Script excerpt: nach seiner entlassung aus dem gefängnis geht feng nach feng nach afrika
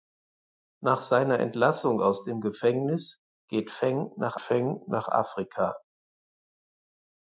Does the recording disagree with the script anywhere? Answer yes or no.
no